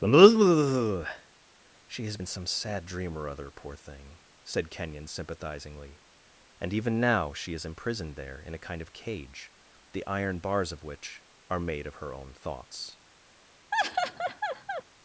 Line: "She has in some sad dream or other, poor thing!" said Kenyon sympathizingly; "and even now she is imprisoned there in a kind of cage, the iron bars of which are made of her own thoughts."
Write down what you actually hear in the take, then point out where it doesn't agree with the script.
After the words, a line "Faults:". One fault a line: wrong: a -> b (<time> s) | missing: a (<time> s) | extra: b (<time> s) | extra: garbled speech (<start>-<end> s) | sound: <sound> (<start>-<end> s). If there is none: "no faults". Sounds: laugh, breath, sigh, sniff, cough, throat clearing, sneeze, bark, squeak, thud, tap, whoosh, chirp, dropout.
"She has in some sad dream or other, poor thing!" said Kenyon sympathizingly; "and even now she is imprisoned there in a kind of cage, the iron bars of which are made of her own thoughts."
Faults:
sound: laugh (13.7-14.8 s)